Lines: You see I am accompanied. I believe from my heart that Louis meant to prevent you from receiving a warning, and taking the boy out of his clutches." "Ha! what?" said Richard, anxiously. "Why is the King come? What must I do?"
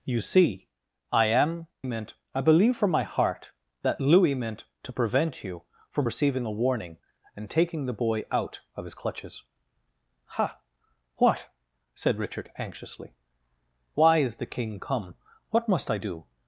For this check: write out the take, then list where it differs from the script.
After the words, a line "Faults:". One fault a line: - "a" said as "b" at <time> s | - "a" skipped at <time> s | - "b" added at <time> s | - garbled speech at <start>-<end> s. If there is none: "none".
You see I am meant. I believe from my heart that Louis meant to prevent you from receiving a warning, and taking the boy out of his clutches." "Ha! what?" said Richard, anxiously. "Why is the King come? What must I do?"
Faults:
- "accompanied" said as "meant" at 1.8 s